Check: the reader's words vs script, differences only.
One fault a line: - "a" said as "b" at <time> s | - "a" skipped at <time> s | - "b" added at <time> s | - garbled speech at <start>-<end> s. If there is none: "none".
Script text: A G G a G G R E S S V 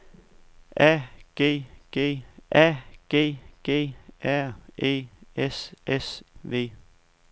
none